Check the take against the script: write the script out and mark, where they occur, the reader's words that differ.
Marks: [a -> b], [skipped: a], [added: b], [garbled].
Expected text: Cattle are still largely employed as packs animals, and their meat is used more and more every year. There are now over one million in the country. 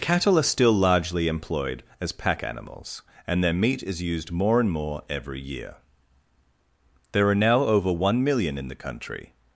Cattle are still largely employed as [packs -> pack] animals, and their meat is used more and more every year. There are now over one million in the country.